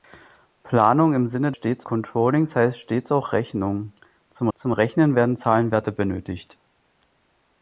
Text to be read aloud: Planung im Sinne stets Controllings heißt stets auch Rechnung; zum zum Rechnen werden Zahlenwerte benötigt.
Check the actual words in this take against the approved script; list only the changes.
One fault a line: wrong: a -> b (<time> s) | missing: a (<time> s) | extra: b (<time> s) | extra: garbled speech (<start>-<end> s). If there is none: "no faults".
no faults